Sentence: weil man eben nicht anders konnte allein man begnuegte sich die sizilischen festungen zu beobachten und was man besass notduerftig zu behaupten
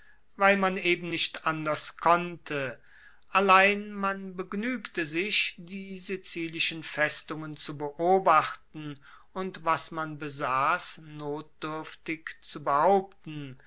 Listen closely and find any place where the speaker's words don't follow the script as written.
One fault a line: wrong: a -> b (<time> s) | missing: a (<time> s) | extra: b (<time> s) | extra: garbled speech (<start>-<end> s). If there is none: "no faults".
no faults